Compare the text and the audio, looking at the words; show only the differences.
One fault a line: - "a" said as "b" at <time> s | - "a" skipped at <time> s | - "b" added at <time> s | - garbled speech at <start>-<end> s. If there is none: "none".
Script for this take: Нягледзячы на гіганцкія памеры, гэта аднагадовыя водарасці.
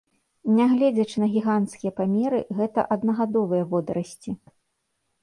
none